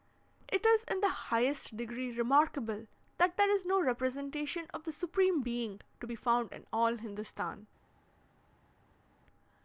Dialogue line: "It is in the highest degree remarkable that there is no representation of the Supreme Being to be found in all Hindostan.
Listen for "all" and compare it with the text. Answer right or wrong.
right